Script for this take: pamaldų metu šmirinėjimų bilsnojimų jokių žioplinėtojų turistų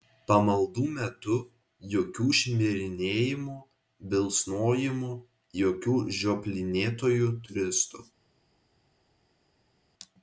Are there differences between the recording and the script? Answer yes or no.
yes